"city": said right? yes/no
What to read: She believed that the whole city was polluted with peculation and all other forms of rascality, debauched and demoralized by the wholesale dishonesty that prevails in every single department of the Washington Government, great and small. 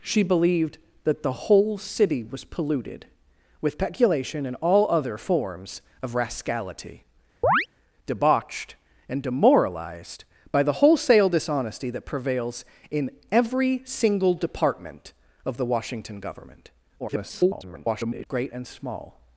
yes